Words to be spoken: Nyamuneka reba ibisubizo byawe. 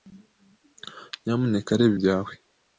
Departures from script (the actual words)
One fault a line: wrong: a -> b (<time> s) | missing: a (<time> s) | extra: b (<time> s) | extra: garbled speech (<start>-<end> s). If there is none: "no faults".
missing: ibisubizo (1.9 s)